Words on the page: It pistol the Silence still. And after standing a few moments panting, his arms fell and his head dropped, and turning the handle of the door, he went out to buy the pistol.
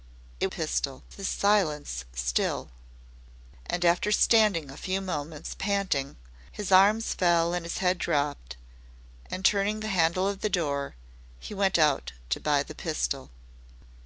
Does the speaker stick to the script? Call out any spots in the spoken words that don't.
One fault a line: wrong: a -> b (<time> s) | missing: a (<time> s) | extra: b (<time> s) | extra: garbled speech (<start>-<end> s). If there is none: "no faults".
no faults